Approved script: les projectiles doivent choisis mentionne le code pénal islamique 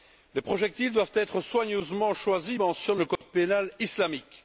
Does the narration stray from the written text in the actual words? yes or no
yes